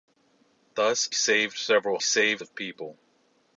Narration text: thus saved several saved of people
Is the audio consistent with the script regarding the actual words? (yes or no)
yes